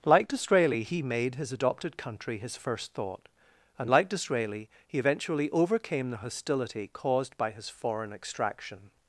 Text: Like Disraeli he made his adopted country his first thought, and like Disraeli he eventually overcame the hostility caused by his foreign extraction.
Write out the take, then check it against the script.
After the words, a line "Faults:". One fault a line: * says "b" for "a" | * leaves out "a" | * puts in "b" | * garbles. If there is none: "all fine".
Like Disraeli he made his adopted country his first thought, and like Disraeli he eventually overcame the hostility caused by his foreign extraction.
Faults:
all fine